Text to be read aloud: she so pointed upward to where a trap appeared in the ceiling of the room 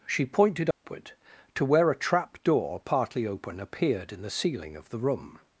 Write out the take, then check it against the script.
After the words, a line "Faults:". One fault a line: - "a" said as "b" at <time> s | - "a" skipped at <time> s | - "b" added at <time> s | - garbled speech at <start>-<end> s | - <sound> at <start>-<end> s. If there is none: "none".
she pointed upward to where a trap door partly open appeared in the ceiling of the room
Faults:
- "so" skipped at 0.2 s
- dropout at 0.7-0.8 s
- "door partly open" added at 2.4 s